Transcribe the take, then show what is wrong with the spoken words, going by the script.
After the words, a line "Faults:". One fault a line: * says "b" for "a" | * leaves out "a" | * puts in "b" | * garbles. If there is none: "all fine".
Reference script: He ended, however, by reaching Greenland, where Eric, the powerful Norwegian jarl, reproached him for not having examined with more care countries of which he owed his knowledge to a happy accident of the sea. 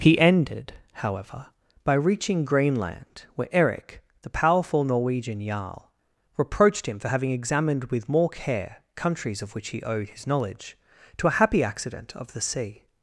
He ended, however, by reaching Greenland, where Eric, the powerful Norwegian jarl, reproached him for having examined with more care countries of which he owed his knowledge to a happy accident of the sea.
Faults:
* leaves out "not"